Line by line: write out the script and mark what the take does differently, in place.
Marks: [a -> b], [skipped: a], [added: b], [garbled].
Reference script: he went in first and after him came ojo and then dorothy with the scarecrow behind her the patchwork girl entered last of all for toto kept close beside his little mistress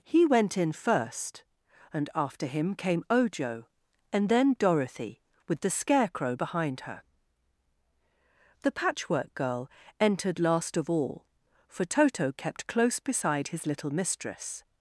he went in first and after him came ojo and then dorothy with the scarecrow behind her the patchwork girl entered last of all for toto kept close beside his little mistress